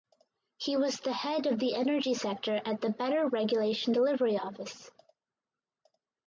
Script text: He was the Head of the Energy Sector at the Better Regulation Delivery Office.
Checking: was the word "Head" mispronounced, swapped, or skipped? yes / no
no